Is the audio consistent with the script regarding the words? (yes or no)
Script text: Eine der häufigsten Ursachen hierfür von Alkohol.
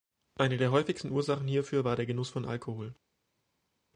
no